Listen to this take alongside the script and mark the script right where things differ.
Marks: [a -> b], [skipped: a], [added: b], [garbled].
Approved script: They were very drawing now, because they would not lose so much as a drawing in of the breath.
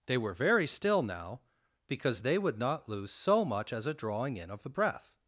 They were very [drawing -> still] now, because they would not lose so much as a drawing in of the breath.